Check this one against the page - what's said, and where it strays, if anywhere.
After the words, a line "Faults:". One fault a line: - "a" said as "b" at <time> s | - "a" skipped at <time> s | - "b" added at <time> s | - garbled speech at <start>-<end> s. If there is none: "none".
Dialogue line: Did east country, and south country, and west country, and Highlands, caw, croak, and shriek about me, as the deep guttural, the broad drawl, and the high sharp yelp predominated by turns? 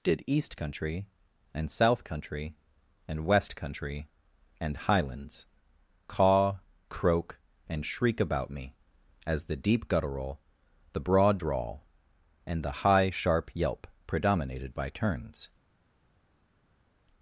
Did east country, and south country, and west country, and Highlands, caw, croak, and shriek about me, as the deep guttural, the broad drawl, and the high sharp yelp predominated by turns?
Faults:
none